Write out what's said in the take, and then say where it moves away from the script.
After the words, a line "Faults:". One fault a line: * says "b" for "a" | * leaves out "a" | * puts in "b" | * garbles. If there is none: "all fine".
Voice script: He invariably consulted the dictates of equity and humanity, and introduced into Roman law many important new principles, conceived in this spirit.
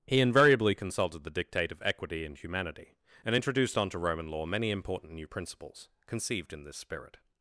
He invariably consulted the dictate of equity and humanity, and introduced onto Roman law many important new principles, conceived in this spirit.
Faults:
* says "dictate" for "dictates"
* says "onto" for "into"